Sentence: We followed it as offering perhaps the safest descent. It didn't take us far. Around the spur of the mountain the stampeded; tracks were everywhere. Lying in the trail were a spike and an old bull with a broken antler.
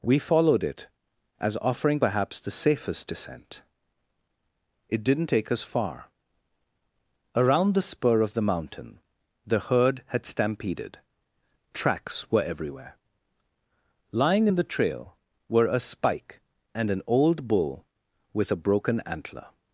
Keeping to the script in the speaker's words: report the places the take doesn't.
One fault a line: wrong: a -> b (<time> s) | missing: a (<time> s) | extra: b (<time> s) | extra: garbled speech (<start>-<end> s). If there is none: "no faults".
extra: herd had (9.6 s)